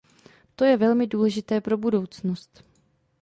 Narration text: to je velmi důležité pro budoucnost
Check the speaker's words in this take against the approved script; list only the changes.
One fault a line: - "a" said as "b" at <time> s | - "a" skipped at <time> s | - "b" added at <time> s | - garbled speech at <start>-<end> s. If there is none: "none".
none